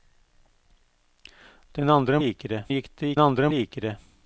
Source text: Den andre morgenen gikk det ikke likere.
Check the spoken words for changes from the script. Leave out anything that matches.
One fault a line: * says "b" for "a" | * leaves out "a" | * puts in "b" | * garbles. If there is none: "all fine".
* says "likere" for "morgenen"
* says "andre" for "ikke"